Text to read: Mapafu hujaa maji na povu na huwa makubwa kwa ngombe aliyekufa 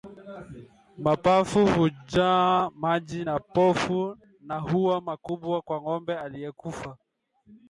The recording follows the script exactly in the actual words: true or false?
true